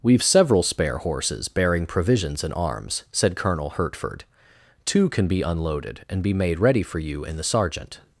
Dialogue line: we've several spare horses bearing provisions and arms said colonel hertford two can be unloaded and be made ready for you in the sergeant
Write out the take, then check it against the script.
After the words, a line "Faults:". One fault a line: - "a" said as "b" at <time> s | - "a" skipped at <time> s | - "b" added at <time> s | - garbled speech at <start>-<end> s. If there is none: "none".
we've several spare horses bearing provisions and arms said colonel hertford two can be unloaded and be made ready for you in the sergeant
Faults:
none